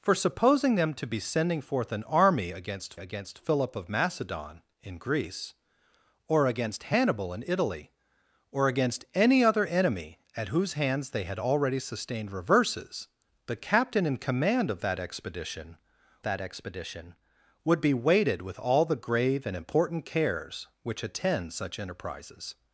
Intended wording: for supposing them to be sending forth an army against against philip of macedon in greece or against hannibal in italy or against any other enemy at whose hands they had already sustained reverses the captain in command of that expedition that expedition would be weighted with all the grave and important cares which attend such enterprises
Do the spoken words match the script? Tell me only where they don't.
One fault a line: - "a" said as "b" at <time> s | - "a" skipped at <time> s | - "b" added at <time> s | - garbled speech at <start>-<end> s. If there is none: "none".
none